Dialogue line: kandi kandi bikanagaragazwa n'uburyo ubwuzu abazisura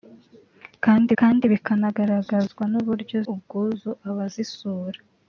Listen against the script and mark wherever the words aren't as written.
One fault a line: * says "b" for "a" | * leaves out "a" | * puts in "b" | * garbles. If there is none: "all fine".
all fine